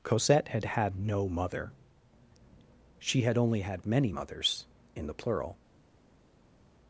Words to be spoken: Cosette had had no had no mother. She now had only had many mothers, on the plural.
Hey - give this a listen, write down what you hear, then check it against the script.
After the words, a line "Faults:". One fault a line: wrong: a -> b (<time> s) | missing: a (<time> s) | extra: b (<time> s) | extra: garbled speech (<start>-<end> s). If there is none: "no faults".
Cosette had had no mother. She had only had many mothers, in the plural.
Faults:
missing: had no (1.3 s)
missing: now (3.2 s)
wrong: on -> in (4.9 s)